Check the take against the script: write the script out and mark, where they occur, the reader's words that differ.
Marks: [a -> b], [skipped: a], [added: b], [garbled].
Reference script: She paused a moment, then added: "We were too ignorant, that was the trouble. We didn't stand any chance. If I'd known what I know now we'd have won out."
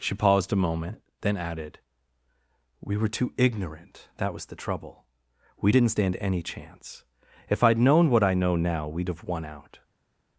She paused a moment, then added: "We were too ignorant, that was the trouble. We didn't stand any chance. If I'd known what I know now we'd have won out."